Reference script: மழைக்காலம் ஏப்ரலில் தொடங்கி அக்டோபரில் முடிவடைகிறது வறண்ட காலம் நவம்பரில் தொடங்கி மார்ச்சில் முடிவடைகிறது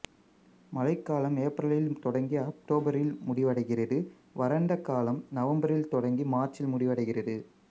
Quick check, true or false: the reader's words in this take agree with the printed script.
true